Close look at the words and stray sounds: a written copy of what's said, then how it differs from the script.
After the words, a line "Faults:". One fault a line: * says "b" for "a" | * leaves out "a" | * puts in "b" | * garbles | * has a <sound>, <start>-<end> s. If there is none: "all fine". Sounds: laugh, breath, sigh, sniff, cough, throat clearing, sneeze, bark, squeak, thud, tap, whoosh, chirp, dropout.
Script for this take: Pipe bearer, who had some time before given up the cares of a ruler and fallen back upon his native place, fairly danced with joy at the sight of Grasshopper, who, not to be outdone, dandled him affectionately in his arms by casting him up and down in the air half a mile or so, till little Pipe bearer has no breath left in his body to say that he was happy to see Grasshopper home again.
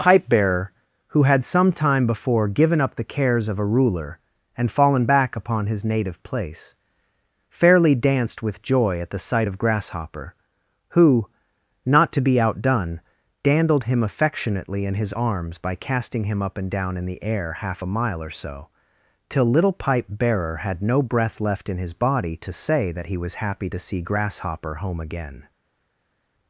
Pipe bearer, who had some time before given up the cares of a ruler and fallen back upon his native place, fairly danced with joy at the sight of Grasshopper, who, not to be outdone, dandled him affectionately in his arms by casting him up and down in the air half a mile or so, till little Pipe bearer had no breath left in his body to say that he was happy to see Grasshopper home again.
Faults:
* says "had" for "has"